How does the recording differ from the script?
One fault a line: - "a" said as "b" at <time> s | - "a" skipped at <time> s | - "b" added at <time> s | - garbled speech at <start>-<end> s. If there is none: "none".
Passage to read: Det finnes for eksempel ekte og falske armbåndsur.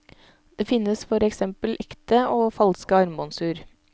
none